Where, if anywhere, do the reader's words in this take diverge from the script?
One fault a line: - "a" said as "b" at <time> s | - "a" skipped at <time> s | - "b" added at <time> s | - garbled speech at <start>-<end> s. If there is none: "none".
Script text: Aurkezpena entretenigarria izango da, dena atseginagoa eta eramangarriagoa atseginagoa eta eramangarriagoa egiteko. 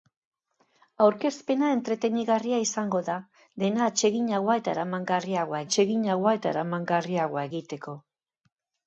none